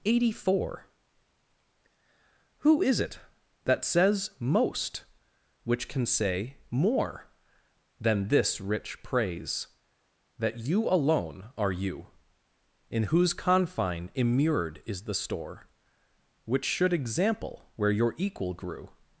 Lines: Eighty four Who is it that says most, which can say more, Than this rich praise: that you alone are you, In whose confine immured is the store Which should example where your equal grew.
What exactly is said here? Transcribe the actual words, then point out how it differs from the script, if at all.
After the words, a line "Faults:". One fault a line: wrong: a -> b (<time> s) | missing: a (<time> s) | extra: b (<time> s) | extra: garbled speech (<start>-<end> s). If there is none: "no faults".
Eighty four Who is it that says most, which can say more, Than this rich praise: that you alone are you, In whose confine immured is the store Which should example where your equal grew.
Faults:
no faults